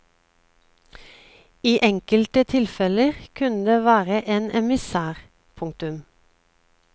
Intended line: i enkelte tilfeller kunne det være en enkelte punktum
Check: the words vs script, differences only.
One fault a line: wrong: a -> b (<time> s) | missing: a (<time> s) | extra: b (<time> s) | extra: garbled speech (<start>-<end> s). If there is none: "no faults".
wrong: enkelte -> emissær (4.6 s)